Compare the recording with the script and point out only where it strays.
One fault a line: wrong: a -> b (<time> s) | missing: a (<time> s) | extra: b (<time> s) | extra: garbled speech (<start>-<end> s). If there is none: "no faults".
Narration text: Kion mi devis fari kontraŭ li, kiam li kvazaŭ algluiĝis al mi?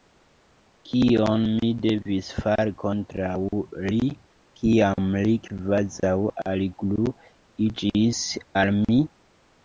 no faults